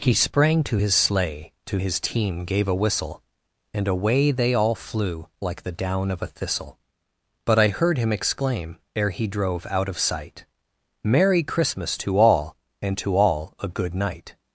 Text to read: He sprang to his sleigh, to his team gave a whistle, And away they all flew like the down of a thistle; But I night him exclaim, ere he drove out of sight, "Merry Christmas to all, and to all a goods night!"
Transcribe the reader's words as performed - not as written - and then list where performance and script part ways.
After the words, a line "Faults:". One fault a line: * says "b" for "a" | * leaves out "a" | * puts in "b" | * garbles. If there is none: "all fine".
He sprang to his sleigh, to his team gave a whistle, And away they all flew like the down of a thistle; But I heard him exclaim, ere he drove out of sight, "Merry Christmas to all, and to all a good night!"
Faults:
* says "heard" for "night"
* says "good" for "goods"